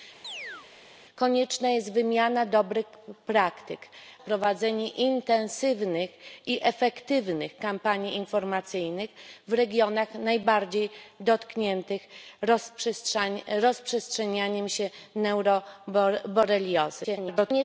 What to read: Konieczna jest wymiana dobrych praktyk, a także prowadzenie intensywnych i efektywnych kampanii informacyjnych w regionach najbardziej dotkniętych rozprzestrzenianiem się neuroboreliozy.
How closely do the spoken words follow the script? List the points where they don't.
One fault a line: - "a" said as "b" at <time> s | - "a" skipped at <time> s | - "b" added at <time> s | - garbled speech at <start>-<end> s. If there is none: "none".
- "a także" skipped at 3.8 s
- garbled speech at 17.0-17.6 s